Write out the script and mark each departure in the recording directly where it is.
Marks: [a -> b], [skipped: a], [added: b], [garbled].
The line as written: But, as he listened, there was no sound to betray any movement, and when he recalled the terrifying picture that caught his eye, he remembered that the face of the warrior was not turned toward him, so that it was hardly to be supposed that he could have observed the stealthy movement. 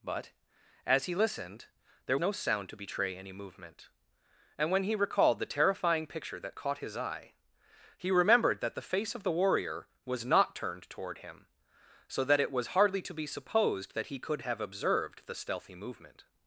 But, as he listened, there [skipped: was] no sound to betray any movement, and when he recalled the terrifying picture that caught his eye, he remembered that the face of the warrior was not turned toward him, so that it was hardly to be supposed that he could have observed the stealthy movement.